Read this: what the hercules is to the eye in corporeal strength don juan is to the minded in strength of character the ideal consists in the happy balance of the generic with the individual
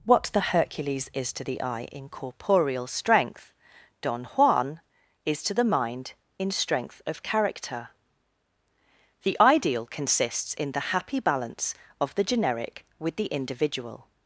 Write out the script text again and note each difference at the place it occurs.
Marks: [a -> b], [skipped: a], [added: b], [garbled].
what the hercules is to the eye in corporeal strength don juan is to the [minded -> mind] in strength of character the ideal consists in the happy balance of the generic with the individual